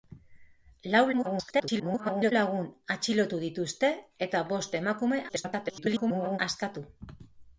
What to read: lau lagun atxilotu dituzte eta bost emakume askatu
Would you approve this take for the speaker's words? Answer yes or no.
no